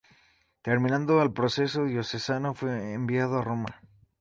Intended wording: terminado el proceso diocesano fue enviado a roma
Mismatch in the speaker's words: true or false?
false